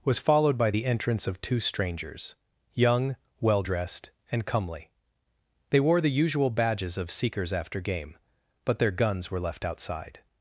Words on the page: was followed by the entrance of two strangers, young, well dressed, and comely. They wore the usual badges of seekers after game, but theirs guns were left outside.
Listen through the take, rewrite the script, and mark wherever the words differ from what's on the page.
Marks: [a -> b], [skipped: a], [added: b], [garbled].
was followed by the entrance of two strangers, young, well dressed, and comely. They wore the usual badges of seekers after game, but [theirs -> their] guns were left outside.